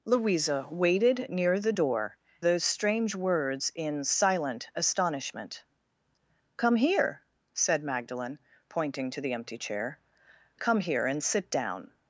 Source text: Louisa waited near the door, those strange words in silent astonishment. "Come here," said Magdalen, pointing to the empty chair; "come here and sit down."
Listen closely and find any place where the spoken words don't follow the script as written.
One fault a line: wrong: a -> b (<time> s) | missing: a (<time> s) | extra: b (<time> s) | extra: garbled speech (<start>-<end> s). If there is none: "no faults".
no faults